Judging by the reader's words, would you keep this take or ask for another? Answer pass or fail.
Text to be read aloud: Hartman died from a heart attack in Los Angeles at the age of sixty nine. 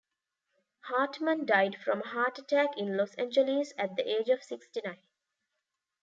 pass